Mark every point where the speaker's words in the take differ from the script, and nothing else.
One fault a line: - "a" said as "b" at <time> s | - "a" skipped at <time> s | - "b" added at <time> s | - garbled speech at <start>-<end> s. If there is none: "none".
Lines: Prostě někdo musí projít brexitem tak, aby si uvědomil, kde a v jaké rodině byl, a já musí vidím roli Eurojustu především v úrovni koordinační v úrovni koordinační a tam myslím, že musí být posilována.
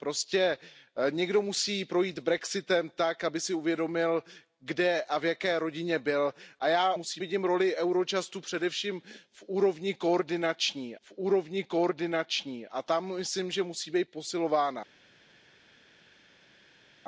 none